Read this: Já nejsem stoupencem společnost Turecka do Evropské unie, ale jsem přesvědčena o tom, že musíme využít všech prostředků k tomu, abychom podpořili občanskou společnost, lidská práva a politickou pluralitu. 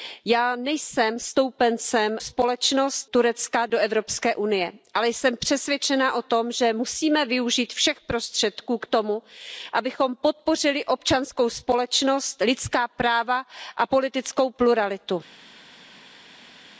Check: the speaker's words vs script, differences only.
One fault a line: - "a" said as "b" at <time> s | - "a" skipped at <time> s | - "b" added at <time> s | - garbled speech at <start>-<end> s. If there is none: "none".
none